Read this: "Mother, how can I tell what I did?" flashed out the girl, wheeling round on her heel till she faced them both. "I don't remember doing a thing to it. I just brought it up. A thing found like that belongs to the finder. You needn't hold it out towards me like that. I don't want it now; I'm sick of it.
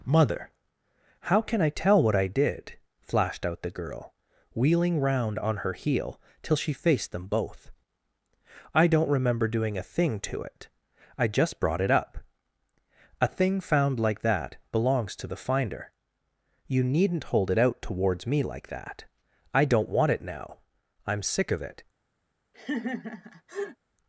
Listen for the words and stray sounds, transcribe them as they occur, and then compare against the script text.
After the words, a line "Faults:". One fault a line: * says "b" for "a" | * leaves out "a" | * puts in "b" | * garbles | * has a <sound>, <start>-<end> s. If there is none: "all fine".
"Mother, how can I tell what I did?" flashed out the girl, wheeling round on her heel till she faced them both. "I don't remember doing a thing to it. I just brought it up. A thing found like that belongs to the finder. You needn't hold it out towards me like that. I don't want it now; I'm sick of it.
Faults:
* has a laugh, 22.5-23.8 s